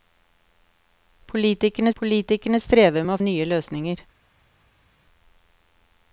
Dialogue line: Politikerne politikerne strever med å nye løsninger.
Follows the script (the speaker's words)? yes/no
yes